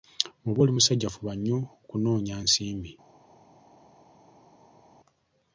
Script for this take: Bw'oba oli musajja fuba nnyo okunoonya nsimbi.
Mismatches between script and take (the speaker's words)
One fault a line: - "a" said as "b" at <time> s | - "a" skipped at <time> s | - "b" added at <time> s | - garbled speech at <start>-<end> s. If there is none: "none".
none